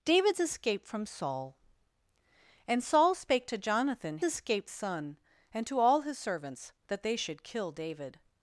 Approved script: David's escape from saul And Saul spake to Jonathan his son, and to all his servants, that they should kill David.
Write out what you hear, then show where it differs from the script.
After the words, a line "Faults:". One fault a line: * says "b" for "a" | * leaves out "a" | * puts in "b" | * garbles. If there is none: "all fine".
David's escape from saul And Saul spake to Jonathan escape son, and to all his servants, that they should kill David.
Faults:
* says "escape" for "his"